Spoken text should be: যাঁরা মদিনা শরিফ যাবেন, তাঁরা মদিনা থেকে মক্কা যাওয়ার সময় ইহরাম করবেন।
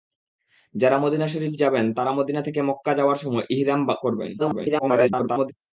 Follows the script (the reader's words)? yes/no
no